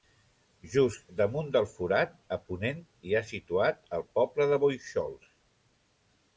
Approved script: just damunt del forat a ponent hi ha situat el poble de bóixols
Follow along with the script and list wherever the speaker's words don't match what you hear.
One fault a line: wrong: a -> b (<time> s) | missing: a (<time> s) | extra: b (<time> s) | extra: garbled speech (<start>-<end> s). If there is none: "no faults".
no faults